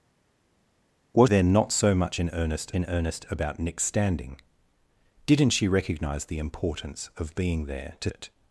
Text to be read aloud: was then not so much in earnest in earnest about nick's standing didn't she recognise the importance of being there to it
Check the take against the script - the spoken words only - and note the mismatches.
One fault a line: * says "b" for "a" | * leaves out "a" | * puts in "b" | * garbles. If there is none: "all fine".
all fine